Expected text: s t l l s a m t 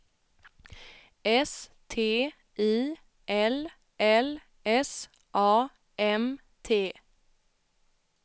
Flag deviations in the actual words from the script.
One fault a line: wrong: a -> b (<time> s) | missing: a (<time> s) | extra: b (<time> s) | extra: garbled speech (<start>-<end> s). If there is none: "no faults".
extra: i (2.6 s)